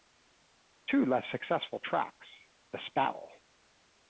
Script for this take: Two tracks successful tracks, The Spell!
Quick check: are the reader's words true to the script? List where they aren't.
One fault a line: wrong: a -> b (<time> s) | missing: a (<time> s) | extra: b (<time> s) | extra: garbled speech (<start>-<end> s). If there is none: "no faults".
wrong: tracks -> less (1.1 s)